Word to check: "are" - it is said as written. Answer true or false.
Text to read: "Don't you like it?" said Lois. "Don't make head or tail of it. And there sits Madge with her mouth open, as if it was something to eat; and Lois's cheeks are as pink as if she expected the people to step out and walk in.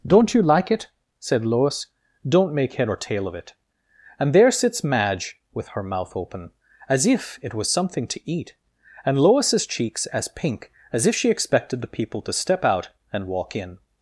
false